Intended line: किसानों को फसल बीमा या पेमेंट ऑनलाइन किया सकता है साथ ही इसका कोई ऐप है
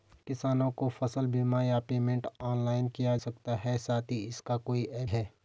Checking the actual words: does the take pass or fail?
pass